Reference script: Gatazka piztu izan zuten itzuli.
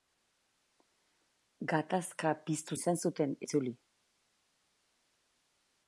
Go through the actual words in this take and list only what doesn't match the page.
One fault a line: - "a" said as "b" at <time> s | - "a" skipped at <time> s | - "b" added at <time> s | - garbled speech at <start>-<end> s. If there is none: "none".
none